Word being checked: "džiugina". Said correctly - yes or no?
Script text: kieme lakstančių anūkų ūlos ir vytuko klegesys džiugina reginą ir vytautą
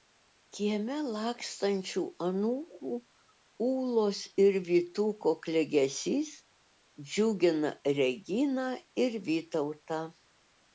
yes